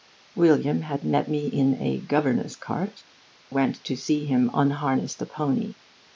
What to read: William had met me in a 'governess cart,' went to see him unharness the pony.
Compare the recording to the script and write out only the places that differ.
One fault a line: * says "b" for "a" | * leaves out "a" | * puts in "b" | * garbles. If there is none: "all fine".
all fine